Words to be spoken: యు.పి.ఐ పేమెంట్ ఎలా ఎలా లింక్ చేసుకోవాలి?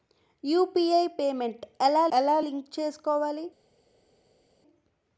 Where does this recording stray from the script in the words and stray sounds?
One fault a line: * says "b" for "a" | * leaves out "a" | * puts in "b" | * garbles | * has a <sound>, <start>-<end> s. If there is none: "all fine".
all fine